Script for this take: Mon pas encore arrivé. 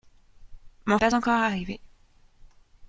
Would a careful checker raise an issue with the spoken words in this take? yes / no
no